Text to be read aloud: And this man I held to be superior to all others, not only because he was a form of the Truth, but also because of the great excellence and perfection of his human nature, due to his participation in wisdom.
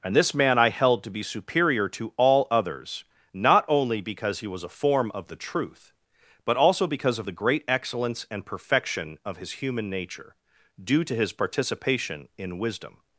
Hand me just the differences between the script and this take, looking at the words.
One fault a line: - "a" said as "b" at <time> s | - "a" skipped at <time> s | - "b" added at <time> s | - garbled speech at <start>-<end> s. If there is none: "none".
none